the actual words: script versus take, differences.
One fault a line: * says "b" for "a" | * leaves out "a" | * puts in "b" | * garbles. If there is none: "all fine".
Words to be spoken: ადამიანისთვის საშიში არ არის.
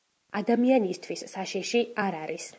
all fine